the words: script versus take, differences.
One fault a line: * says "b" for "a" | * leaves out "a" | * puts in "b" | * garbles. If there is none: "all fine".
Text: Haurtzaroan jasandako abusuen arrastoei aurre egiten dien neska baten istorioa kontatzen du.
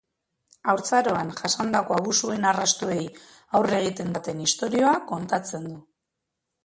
* leaves out "dien neska"